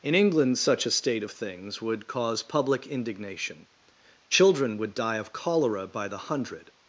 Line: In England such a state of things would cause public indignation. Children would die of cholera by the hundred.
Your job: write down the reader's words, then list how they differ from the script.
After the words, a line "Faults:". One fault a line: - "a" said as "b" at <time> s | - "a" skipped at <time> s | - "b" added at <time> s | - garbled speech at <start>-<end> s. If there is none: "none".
In England such a state of things would cause public indignation. Children would die of cholera by the hundred.
Faults:
none